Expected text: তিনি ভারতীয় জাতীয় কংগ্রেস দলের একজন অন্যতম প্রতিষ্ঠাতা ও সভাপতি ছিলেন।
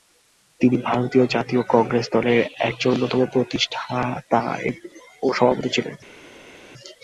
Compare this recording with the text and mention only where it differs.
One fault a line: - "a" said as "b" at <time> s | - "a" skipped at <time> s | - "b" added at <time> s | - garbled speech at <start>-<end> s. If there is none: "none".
none